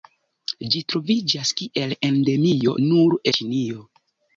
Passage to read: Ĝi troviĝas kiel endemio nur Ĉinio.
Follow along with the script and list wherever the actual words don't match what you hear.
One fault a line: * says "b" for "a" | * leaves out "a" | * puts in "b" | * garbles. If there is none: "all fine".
all fine